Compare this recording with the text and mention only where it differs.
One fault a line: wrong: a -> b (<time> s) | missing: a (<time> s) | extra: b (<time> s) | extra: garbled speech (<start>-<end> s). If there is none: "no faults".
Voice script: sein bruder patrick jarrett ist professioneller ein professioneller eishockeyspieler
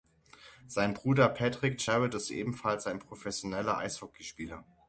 wrong: professioneller -> ebenfalls (2.3 s)